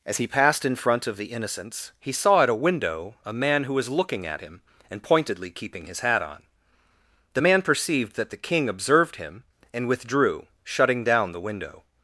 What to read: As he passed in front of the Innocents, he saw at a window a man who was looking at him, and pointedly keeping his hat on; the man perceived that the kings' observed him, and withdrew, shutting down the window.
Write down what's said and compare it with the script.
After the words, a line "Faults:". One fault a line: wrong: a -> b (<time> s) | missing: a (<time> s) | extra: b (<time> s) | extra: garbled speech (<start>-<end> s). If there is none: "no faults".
As he passed in front of the Innocents, he saw at a window a man who was looking at him, and pointedly keeping his hat on; the man perceived that the king' observed him, and withdrew, shutting down the window.
Faults:
wrong: kings -> king (8.4 s)